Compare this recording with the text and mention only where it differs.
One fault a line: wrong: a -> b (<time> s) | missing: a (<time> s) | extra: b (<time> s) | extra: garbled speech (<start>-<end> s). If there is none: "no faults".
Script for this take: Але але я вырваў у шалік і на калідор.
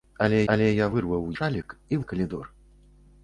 no faults